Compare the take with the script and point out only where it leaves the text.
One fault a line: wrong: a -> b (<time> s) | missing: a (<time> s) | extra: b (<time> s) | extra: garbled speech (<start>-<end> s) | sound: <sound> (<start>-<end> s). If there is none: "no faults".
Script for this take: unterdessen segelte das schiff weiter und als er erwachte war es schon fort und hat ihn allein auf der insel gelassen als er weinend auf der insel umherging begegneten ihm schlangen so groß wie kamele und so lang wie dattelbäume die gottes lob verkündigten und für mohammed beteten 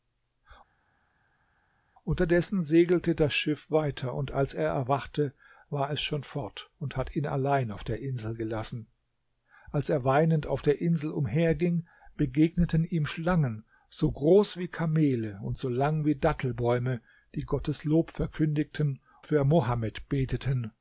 missing: und (19.0 s)